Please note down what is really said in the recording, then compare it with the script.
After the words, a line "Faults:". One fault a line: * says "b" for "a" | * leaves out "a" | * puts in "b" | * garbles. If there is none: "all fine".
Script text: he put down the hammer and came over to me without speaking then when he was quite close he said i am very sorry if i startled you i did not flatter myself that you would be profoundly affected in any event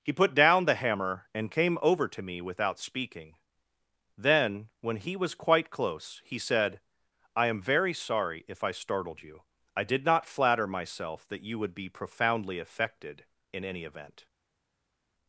he put down the hammer and came over to me without speaking then when he was quite close he said i am very sorry if i startled you i did not flatter myself that you would be profoundly affected in any event
Faults:
all fine